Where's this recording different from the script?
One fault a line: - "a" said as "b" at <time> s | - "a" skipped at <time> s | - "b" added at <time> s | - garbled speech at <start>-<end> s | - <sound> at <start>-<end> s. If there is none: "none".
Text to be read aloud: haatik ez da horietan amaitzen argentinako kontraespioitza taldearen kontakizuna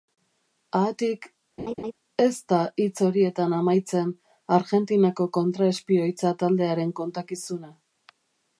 - laugh at 1.6-1.9 s
- "hitz" added at 2.8 s